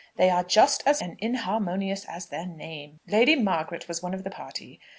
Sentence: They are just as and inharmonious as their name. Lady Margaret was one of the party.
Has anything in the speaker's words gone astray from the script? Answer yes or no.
no